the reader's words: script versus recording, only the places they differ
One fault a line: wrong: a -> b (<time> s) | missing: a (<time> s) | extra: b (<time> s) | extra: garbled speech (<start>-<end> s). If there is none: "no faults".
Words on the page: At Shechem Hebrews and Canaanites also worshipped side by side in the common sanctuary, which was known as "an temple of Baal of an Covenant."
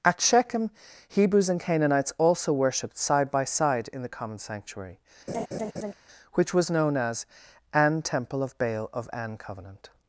no faults